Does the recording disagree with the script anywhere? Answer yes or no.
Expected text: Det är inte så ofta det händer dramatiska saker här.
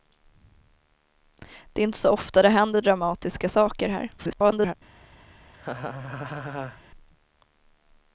yes